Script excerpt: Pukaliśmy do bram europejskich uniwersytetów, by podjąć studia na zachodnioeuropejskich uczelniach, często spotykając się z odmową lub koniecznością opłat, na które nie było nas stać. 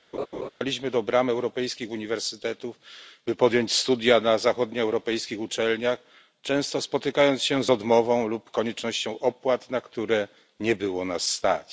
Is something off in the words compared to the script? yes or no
no